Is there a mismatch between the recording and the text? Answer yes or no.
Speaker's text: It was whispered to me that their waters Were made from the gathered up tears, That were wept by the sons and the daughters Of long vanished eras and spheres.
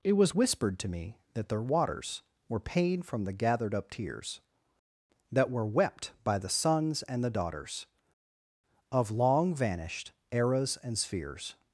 yes